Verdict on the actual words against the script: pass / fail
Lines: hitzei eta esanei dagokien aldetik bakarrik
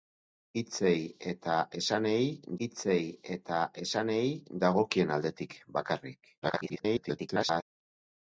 fail